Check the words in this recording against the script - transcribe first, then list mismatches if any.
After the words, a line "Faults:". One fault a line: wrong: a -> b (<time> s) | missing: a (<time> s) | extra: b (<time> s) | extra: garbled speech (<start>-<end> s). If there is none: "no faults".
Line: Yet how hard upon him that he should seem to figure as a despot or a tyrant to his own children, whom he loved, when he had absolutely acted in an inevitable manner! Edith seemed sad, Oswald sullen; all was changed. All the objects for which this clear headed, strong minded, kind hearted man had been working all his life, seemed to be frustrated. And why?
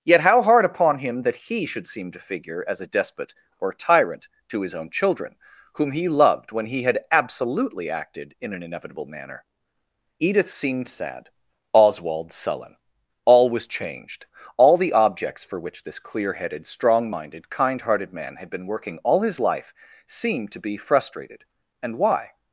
Yet how hard upon him that he should seem to figure as a despot or tyrant to his own children, whom he loved, when he had absolutely acted in an inevitable manner! Edith seemed sad, Oswald sullen; all was changed. All the objects for which this clear headed, strong minded, kind hearted man had been working all his life, seemed to be frustrated. And why?
Faults:
missing: a (3.7 s)